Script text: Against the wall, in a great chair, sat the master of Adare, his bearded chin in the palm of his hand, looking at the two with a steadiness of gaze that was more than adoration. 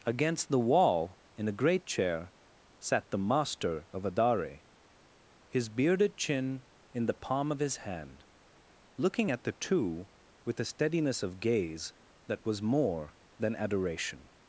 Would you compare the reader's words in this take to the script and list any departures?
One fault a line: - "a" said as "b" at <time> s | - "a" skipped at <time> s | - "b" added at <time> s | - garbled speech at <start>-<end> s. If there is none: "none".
none